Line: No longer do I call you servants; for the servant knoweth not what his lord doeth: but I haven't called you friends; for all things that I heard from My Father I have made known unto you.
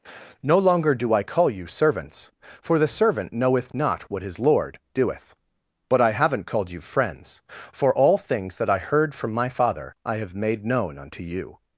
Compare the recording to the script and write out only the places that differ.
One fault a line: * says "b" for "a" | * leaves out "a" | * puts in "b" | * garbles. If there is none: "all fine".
all fine